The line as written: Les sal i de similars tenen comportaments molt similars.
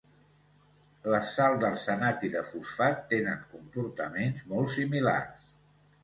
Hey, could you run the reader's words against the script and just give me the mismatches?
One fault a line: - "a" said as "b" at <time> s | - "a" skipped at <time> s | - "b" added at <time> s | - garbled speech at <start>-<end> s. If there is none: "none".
- "d'arsenat" added at 1.6 s
- "similars" said as "fosfat" at 2.5 s